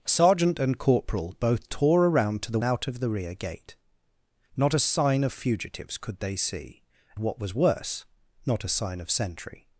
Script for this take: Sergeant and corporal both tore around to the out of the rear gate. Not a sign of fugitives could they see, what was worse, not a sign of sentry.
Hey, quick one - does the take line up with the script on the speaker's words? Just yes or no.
yes